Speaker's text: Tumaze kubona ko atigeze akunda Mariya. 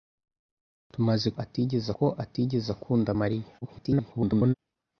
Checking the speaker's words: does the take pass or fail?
fail